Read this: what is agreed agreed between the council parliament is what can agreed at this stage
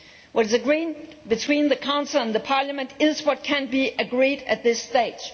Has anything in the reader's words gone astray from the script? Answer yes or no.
yes